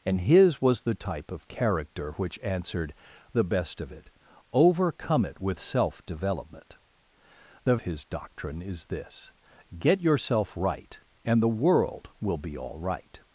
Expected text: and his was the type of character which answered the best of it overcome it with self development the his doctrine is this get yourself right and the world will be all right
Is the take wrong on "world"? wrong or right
right